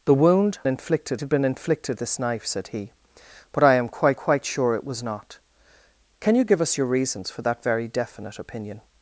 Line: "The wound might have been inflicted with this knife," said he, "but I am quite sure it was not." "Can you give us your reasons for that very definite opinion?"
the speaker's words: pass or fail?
fail